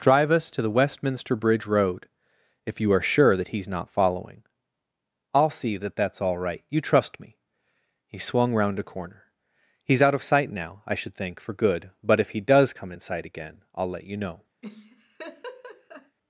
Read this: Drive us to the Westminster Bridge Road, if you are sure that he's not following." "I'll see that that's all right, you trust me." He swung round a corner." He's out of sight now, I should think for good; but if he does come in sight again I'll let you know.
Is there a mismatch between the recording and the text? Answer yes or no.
no